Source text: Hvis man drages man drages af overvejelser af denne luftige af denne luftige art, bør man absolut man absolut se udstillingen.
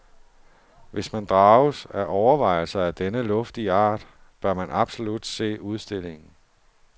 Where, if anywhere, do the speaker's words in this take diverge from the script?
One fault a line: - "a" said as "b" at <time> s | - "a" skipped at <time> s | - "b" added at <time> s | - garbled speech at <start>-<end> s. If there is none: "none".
- "man drages" skipped at 1.9 s
- "af denne luftige" skipped at 3.7 s
- "man absolut" skipped at 5.2 s